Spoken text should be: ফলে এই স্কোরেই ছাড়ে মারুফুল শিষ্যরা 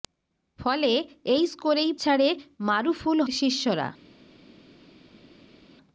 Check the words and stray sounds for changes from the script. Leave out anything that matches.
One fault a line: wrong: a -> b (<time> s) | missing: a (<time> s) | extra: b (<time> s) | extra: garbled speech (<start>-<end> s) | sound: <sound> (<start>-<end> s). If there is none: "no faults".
no faults